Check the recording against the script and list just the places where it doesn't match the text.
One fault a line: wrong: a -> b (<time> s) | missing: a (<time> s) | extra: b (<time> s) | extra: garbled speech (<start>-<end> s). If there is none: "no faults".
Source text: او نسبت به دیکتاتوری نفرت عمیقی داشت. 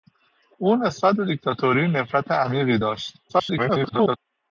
extra: garbled speech (3.3-4.2 s)